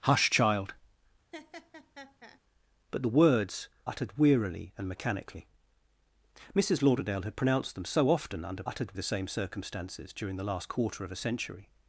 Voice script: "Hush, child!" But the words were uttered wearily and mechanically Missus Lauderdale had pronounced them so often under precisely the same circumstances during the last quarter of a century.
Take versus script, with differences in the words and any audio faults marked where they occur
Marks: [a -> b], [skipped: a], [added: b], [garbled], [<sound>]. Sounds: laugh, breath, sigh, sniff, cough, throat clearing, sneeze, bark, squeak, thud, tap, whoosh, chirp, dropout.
"Hush, child!" [laugh] But the words [skipped: were] uttered wearily and mechanically Missus Lauderdale had pronounced them so often under [precisely -> uttered] the same circumstances during the last quarter of a century.